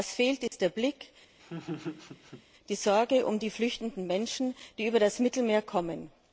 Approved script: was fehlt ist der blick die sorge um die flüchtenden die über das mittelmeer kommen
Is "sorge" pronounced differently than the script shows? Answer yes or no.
no